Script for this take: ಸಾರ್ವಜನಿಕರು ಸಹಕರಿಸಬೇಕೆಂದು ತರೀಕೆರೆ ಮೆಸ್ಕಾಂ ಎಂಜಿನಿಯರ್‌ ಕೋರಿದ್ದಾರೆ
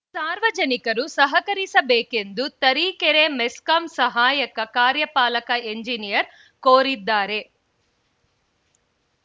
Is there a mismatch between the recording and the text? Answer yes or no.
yes